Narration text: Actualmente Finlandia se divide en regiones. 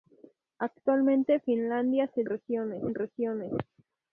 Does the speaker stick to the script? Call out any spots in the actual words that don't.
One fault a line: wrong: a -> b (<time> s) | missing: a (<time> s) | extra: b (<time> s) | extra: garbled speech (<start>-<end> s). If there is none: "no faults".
wrong: divide -> regiones (2.3 s)